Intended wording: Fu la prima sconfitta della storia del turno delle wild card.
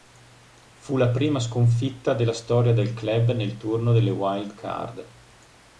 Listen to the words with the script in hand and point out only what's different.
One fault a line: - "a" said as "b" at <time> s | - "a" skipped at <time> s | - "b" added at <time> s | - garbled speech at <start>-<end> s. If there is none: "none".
- "club nel" added at 3.0 s